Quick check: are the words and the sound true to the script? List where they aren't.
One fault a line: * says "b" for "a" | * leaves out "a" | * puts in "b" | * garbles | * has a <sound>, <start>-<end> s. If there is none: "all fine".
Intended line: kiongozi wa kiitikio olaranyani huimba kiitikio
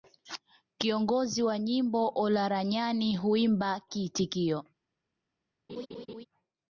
* says "nyimbo" for "kiitikio"
* has a laugh, 5.7-6.3 s